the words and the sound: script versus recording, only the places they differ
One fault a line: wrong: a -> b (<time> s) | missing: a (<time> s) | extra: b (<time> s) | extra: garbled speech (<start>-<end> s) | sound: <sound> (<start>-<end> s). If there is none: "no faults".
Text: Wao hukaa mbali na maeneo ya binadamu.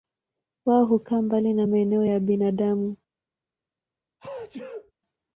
sound: sneeze (4.2-4.9 s)